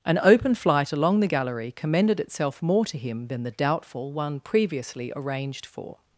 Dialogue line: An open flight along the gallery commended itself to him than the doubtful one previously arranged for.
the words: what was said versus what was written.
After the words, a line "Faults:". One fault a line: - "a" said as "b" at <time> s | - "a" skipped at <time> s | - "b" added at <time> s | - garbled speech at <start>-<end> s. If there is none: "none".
An open flight along the gallery commended itself more to him than the doubtful one previously arranged for.
Faults:
- "more" added at 2.6 s